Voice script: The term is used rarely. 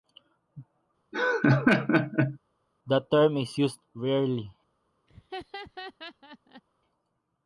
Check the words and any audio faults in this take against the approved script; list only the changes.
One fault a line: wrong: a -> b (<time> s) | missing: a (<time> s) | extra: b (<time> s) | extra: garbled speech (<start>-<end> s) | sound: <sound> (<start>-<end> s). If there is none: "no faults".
sound: laugh (1.1-2.4 s)
sound: laugh (5.1-6.6 s)